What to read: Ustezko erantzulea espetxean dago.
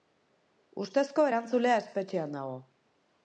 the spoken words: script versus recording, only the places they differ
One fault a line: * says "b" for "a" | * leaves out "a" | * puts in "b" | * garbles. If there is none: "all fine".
all fine